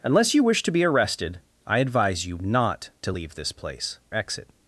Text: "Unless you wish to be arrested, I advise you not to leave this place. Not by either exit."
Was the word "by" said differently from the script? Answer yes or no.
yes